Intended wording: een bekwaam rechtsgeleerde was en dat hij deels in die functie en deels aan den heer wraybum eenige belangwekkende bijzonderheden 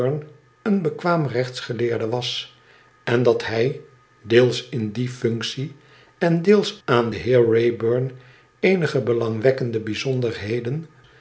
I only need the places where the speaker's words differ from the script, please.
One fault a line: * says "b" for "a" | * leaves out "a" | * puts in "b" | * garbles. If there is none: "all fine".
all fine